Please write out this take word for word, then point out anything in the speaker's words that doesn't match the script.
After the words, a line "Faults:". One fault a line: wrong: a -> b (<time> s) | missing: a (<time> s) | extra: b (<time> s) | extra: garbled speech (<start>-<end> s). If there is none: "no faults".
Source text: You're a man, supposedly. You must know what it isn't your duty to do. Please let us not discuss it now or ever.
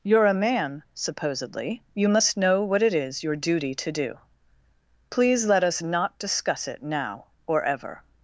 You're a man, supposedly. You must know what it is your duty to do. Please let us not discuss it now or ever.
Faults:
wrong: isn't -> is (2.9 s)